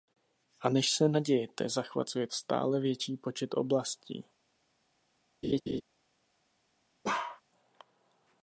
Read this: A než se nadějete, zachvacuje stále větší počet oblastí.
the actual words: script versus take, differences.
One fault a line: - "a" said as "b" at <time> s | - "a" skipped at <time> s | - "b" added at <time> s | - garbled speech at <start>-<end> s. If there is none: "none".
none